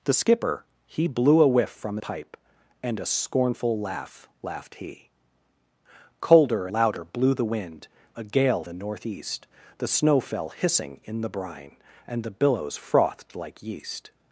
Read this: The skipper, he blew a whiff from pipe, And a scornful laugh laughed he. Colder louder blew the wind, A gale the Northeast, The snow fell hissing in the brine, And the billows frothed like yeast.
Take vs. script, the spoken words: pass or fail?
pass